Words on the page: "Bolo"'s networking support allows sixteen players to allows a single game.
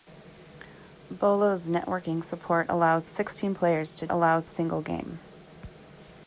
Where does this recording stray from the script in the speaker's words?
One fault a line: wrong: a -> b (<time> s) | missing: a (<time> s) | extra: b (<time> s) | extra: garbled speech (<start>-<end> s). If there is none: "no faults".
no faults